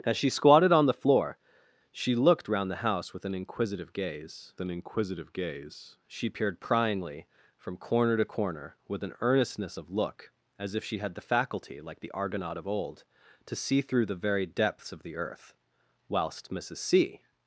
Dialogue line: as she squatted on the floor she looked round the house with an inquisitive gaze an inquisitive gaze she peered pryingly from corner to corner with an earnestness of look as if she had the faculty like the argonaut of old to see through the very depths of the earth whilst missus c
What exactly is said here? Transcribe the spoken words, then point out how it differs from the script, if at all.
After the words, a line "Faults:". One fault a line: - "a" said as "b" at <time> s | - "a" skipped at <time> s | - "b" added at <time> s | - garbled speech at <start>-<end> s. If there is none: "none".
as she squatted on the floor she looked round the house with an inquisitive gaze an inquisitive gaze she peered pryingly from corner to corner with an earnestness of look as if she had the faculty like the argonaut of old to see through the very depths of the earth whilst missus c
Faults:
none